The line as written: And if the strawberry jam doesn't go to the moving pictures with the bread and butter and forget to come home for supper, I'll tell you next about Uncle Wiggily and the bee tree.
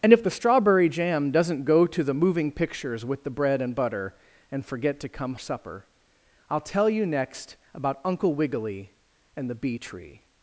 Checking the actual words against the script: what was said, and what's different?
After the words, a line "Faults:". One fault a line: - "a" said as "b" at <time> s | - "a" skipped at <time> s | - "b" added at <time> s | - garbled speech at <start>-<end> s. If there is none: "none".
And if the strawberry jam doesn't go to the moving pictures with the bread and butter and forget to come supper, I'll tell you next about Uncle Wiggily and the bee tree.
Faults:
- "home for" skipped at 5.3 s